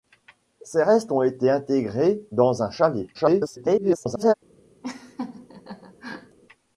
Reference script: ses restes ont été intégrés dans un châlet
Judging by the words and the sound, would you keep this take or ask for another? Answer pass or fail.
fail